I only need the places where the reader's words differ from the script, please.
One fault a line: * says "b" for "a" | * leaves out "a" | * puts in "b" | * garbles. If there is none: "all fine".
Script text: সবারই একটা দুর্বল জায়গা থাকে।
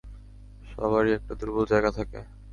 all fine